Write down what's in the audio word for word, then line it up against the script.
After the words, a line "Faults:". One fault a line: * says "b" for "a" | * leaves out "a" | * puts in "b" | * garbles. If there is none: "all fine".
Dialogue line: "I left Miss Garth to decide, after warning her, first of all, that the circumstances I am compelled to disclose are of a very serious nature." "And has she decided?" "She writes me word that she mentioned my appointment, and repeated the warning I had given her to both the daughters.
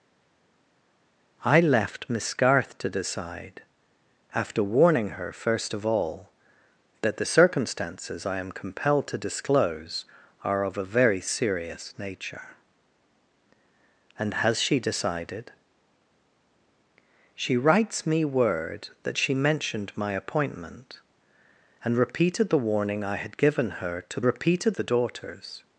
"I left Miss Garth to decide, after warning her, first of all, that the circumstances I am compelled to disclose are of a very serious nature." "And has she decided?" "She writes me word that she mentioned my appointment, and repeated the warning I had given her to repeated the daughters.
Faults:
* says "repeated" for "both"